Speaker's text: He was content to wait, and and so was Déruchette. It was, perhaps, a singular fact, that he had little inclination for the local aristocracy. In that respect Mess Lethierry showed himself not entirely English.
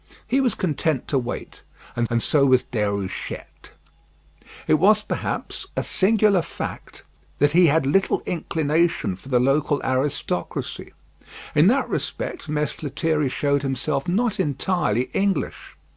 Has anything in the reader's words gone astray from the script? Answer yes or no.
no